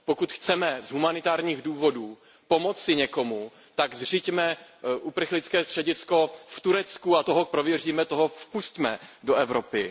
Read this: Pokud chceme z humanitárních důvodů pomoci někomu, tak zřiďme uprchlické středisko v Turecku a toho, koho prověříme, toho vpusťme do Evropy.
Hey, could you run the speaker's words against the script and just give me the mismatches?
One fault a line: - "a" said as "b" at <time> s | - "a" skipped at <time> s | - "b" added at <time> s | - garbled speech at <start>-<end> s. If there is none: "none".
- "koho" skipped at 7.4 s